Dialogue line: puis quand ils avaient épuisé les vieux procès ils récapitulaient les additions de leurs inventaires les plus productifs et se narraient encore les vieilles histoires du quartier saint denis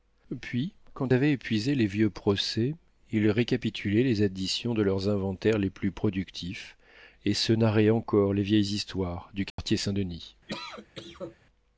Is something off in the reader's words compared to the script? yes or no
yes